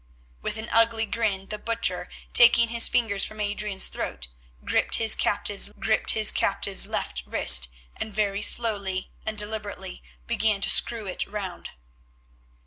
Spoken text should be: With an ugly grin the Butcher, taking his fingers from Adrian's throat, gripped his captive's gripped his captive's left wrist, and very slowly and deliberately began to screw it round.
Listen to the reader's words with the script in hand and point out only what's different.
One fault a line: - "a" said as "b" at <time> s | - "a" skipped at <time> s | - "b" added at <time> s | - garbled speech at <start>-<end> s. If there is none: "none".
none